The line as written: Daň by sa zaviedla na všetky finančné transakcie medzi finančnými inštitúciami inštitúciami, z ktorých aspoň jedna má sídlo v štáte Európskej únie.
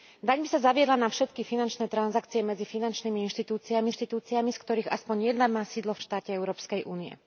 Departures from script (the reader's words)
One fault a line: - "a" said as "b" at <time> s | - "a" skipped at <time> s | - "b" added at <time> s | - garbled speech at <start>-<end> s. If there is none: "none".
none